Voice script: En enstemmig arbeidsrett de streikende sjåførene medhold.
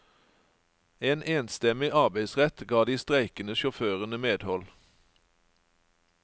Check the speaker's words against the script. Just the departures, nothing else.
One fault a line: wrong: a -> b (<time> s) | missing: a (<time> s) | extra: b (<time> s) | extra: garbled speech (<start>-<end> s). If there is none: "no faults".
extra: ga (2.7 s)